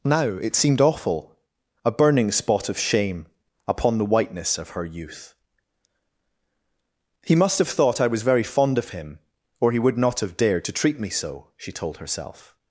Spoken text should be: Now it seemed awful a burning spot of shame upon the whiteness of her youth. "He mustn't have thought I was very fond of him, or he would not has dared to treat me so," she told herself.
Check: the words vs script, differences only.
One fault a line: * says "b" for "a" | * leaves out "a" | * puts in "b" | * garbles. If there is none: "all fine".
* says "must" for "mustn't"
* says "have" for "has"